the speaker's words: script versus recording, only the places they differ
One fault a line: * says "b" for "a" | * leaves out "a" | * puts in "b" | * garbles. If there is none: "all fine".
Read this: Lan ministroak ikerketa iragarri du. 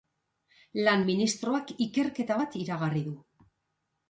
* puts in "bat"